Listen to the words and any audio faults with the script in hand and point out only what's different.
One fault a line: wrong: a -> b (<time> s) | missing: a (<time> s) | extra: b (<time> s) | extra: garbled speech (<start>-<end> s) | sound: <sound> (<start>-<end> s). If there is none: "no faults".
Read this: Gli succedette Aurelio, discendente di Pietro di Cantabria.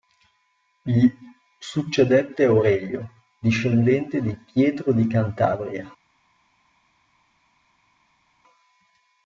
no faults